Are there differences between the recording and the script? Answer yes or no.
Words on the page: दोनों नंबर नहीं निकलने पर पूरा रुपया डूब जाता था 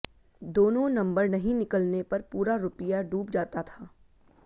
no